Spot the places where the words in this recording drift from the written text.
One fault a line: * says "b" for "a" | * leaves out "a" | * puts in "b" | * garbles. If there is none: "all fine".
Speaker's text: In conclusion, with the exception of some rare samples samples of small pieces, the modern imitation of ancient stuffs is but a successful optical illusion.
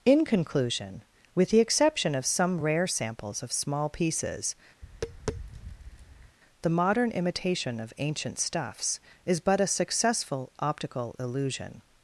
* leaves out "samples"